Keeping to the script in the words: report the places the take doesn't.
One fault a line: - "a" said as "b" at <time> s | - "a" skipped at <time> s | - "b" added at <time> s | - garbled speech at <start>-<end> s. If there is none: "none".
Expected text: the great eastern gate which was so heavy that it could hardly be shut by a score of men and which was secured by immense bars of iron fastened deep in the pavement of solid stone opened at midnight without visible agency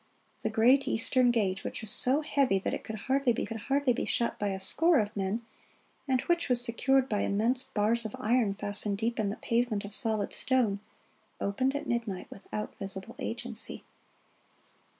- "could hardly be" added at 3.4 s